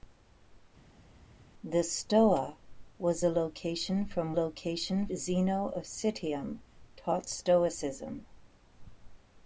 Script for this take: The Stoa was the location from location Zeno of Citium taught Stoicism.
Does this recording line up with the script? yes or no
yes